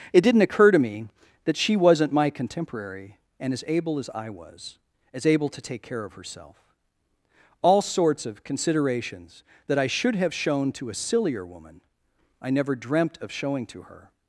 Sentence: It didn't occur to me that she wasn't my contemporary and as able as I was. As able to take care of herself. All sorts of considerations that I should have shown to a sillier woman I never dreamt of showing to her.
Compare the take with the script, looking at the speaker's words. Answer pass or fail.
pass